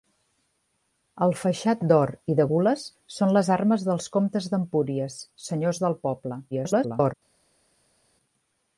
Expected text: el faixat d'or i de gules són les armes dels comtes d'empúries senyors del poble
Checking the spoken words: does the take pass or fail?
fail